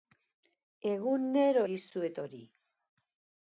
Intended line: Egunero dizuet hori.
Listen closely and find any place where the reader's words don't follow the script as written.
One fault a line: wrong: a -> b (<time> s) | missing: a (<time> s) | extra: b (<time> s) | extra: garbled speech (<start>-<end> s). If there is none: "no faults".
no faults